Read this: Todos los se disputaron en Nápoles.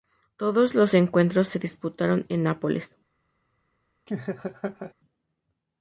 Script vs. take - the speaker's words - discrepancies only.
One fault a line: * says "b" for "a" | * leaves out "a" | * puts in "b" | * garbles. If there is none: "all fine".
* puts in "encuentros"